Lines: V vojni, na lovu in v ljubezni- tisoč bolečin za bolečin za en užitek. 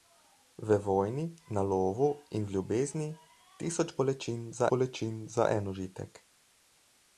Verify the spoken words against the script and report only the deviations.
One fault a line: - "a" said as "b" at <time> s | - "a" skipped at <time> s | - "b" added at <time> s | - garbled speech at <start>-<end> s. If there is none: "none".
none